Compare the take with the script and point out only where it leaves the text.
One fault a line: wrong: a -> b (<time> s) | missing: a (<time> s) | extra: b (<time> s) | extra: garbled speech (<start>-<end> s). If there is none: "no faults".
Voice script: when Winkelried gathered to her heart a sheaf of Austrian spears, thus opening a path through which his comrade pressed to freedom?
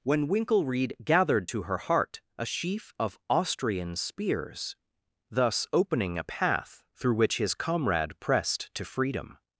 no faults